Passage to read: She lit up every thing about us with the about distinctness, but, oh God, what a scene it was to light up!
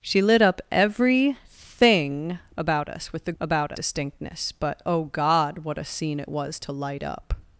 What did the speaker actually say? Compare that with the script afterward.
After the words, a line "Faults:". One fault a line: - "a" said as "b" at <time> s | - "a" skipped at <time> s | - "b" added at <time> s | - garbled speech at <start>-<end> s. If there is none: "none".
She lit up every thing about us with the about distinctness, but, oh God, what a scene it was to light up!
Faults:
none